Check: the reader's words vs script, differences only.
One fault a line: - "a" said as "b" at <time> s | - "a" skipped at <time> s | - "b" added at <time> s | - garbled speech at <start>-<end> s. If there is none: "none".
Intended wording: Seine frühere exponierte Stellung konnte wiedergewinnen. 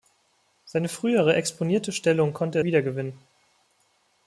none